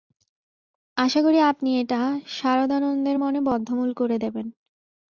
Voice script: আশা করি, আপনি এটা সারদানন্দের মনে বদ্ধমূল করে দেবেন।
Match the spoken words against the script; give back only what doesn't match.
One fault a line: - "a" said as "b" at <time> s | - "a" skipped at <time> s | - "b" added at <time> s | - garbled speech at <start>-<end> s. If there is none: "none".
none